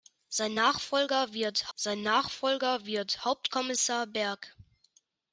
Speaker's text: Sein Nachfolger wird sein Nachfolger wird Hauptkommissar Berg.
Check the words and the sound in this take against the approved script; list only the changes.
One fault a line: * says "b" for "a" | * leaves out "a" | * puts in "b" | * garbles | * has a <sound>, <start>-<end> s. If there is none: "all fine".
all fine